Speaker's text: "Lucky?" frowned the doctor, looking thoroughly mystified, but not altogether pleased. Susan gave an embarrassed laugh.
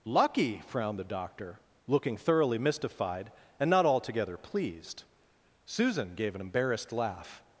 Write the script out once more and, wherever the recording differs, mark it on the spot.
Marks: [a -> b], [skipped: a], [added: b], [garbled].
"Lucky?" frowned the doctor, looking thoroughly mystified, [but -> and] not altogether pleased. Susan gave an embarrassed laugh.